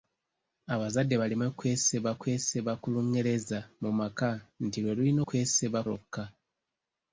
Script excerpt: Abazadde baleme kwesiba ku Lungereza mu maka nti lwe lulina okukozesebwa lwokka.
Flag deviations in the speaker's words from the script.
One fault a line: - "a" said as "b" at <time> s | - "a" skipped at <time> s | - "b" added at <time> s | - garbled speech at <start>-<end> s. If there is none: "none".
- "kwesiba" added at 2.2 s
- "okukozesebwa" said as "kwesiba" at 5.3 s